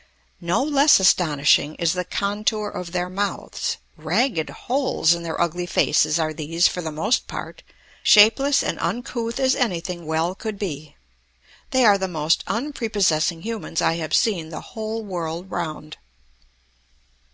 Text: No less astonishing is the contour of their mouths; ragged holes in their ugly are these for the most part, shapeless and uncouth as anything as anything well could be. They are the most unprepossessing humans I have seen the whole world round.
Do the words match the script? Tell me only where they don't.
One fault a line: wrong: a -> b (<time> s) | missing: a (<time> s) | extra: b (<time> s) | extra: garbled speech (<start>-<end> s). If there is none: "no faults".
extra: faces (5.7 s)
missing: as anything (10.0 s)